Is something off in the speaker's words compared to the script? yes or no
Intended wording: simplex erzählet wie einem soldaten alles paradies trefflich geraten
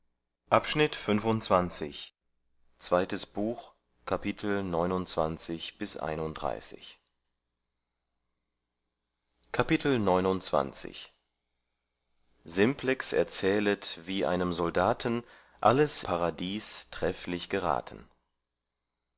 no